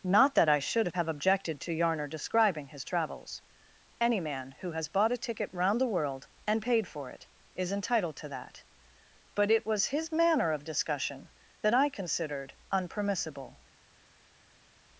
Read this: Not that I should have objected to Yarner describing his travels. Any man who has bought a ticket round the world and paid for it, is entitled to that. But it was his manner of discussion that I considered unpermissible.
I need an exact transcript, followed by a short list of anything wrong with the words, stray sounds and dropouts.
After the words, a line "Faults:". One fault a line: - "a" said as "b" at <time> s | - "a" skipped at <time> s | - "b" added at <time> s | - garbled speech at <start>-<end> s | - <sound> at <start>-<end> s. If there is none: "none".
Not that I should have objected to Yarner describing his travels. Any man who has bought a ticket round the world and paid for it, is entitled to that. But it was his manner of discussion that I considered unpermissible.
Faults:
none